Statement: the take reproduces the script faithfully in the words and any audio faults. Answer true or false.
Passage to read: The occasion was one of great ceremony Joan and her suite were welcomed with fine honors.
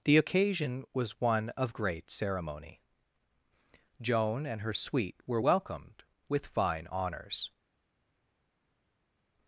true